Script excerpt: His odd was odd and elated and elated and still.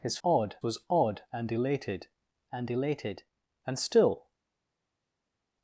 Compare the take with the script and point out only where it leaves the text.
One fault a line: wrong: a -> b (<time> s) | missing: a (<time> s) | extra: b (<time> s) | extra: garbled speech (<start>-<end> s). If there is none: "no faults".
no faults